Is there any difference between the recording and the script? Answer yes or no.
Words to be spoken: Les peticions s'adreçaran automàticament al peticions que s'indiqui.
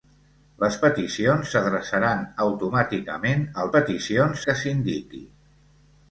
no